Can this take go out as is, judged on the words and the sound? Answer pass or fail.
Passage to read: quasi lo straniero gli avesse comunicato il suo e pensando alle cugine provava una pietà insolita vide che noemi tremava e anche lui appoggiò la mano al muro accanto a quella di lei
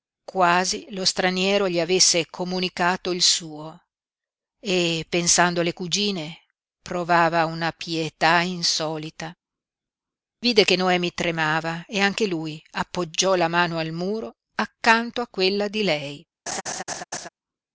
fail